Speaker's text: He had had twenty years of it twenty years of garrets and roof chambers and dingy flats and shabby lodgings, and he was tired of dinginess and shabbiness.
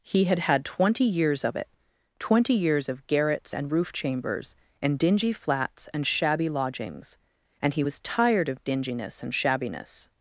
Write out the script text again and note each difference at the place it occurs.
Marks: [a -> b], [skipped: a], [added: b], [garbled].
He had had twenty years of it twenty years of garrets and roof chambers and dingy flats and shabby lodgings, and he was tired of dinginess and shabbiness.